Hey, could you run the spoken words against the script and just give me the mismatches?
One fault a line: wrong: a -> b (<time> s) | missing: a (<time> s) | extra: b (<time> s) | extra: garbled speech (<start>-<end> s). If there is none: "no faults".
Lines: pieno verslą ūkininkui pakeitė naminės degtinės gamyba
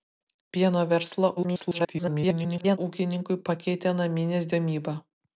extra: garbled speech (1.4-2.8 s)
missing: degtinės (4.5 s)